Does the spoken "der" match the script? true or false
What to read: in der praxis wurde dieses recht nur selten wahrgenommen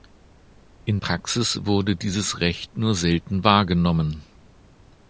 false